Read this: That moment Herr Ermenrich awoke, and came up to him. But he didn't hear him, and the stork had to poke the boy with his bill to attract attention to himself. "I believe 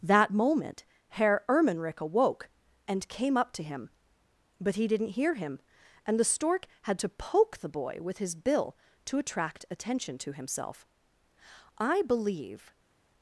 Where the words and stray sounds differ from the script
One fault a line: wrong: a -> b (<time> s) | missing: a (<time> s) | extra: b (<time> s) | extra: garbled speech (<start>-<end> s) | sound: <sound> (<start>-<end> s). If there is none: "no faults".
no faults